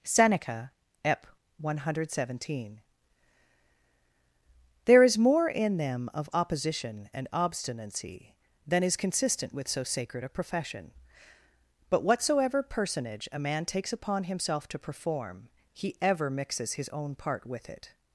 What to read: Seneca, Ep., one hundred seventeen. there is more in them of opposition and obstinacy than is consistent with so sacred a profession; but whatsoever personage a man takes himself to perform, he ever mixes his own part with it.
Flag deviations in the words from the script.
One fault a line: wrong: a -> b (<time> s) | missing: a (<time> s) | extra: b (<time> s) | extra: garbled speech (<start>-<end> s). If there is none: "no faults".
extra: upon (13.9 s)